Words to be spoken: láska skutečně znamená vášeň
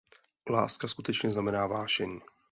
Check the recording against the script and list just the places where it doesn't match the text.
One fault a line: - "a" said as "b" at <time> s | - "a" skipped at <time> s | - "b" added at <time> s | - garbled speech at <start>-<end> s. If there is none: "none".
none